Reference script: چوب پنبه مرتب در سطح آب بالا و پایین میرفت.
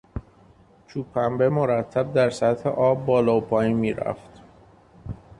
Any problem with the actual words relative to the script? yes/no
no